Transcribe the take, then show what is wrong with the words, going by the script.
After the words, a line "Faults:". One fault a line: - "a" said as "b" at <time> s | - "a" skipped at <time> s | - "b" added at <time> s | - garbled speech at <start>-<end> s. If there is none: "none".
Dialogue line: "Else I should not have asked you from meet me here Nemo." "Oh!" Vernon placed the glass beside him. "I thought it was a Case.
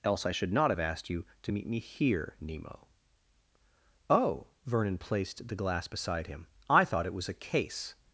"Else I should not have asked you to meet me here Nemo." "Oh!" Vernon placed the glass beside him. "I thought it was a Case.
Faults:
- "from" said as "to" at 1.4 s